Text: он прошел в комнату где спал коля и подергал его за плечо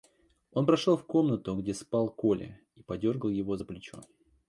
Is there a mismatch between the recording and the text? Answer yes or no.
no